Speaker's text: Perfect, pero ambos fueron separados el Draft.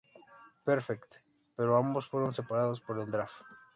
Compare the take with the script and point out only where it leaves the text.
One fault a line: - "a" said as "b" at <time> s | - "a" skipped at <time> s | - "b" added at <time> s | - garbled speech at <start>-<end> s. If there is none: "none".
- "por" added at 2.8 s